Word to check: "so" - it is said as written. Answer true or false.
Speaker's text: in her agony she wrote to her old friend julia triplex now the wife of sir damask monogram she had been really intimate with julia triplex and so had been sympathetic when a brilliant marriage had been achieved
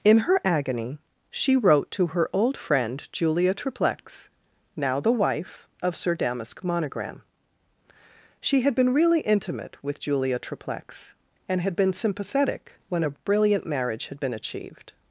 false